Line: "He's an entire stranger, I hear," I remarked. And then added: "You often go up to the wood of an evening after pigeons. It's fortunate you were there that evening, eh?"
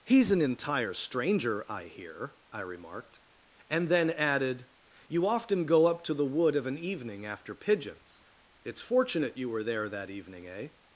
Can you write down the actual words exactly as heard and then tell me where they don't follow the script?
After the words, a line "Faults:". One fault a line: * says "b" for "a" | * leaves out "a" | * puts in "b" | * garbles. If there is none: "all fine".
"He's an entire stranger, I hear," I remarked. And then added: "You often go up to the wood of an evening after pigeons. It's fortunate you were there that evening, eh?"
Faults:
all fine